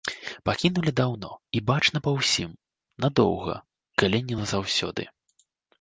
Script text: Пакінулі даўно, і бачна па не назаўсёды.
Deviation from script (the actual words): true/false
true